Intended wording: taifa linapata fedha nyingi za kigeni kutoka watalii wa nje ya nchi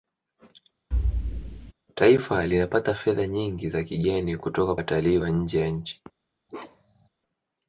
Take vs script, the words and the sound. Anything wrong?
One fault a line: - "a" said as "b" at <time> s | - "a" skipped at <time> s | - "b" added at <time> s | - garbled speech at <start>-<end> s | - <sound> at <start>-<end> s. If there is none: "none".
- thud at 0.9-1.7 s
- bark at 6.5-7.1 s